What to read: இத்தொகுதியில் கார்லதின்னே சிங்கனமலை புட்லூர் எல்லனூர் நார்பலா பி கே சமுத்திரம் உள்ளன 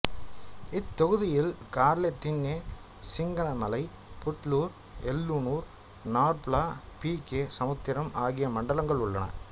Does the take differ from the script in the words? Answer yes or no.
yes